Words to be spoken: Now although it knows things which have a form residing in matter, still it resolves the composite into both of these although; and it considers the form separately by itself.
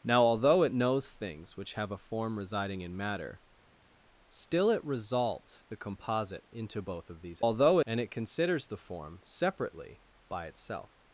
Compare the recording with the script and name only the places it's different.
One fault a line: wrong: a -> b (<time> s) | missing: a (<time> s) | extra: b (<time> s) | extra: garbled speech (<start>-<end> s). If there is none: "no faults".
no faults